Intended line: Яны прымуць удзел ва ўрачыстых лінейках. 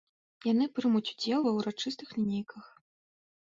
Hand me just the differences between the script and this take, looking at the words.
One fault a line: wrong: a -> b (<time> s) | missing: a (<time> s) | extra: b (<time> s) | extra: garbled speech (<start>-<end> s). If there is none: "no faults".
no faults